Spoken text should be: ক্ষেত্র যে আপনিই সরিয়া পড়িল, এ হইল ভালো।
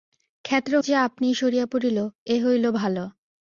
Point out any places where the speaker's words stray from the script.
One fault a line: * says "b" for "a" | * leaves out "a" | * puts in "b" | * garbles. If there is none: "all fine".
all fine